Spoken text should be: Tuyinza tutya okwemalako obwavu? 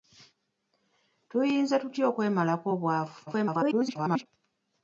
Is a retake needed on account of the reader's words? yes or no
yes